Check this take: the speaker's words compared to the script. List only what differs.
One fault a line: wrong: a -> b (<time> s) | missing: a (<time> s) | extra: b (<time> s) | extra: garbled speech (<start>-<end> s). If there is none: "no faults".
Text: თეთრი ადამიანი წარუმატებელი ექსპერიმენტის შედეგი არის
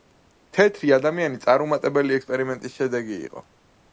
wrong: არის -> იყო (3.3 s)